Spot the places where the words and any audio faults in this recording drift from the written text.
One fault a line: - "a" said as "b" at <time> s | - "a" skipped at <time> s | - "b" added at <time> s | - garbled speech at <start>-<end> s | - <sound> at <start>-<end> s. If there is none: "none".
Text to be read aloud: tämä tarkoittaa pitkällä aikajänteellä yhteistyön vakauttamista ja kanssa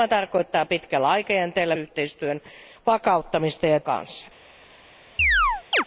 - chirp at 5.2-5.8 s